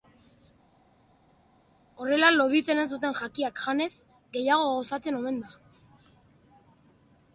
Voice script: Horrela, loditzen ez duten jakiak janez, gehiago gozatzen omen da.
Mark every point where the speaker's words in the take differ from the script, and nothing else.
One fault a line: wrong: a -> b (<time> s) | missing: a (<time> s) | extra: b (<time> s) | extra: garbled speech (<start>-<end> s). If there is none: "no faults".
no faults